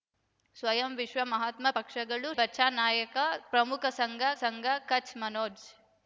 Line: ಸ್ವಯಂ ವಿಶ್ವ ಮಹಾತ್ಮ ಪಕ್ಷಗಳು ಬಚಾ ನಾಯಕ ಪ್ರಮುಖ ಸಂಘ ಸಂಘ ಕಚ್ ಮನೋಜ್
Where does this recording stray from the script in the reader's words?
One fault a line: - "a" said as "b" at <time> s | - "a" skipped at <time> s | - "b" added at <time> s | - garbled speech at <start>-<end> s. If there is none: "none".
none